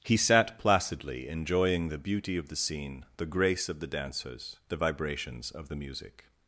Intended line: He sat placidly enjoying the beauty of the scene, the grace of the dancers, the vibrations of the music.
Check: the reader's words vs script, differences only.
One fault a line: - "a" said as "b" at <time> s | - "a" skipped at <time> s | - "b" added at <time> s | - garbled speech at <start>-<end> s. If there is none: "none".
none